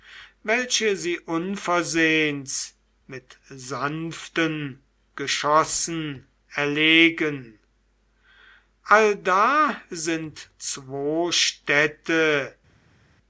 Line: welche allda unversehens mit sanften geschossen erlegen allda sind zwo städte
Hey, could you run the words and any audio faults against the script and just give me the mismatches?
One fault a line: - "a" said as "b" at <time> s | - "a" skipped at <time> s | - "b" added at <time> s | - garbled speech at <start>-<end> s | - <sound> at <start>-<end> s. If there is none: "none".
- "allda" said as "sie" at 1.0 s